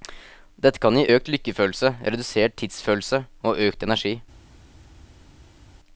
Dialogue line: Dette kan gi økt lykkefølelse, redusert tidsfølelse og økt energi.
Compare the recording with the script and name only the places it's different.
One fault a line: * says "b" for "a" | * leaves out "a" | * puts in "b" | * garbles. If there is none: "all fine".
all fine